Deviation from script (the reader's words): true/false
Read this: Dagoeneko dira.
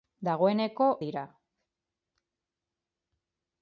false